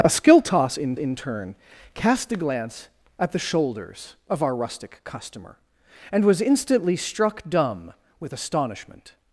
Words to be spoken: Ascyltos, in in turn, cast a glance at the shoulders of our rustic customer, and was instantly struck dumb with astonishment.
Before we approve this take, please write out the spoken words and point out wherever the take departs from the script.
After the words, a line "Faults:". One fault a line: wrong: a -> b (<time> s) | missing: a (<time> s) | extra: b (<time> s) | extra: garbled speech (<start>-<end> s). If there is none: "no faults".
Ascyltos, in in turn, cast a glance at the shoulders of our rustic customer, and was instantly struck dumb with astonishment.
Faults:
no faults